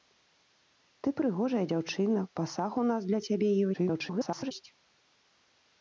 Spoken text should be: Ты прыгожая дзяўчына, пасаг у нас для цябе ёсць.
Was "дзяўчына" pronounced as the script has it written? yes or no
yes